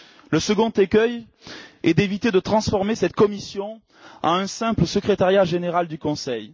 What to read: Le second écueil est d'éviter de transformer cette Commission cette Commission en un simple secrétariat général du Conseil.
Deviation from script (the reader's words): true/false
true